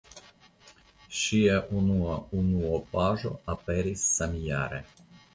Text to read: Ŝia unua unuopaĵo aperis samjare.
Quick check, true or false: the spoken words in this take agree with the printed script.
true